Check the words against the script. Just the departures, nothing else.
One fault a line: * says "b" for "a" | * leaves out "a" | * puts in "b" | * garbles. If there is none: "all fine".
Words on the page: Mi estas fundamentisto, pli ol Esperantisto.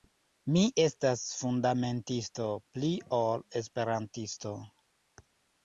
all fine